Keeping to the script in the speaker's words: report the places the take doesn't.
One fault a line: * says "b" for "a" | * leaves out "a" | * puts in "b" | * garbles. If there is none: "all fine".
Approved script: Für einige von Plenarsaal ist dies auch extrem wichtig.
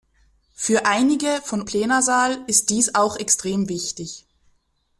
all fine